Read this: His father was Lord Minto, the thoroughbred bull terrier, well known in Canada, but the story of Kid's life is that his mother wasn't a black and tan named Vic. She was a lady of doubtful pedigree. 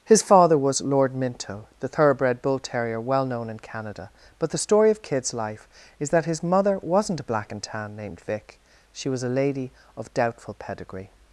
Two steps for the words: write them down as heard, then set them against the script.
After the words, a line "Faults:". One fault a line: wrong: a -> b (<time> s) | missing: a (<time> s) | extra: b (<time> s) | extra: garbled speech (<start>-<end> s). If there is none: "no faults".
His father was Lord Minto, the thoroughbred bull terrier, well known in Canada, but the story of Kid's life is that his mother wasn't a black and tan named Vic. She was a lady of doubtful pedigree.
Faults:
no faults